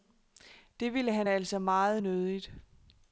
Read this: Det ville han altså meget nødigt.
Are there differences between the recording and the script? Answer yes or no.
no